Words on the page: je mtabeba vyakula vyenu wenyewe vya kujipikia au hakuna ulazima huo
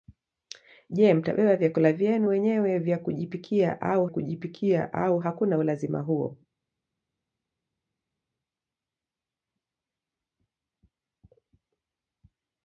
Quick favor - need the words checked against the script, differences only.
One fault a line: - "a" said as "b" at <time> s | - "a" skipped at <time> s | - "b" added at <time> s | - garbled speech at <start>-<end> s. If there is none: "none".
- "kujipikia au" added at 4.1 s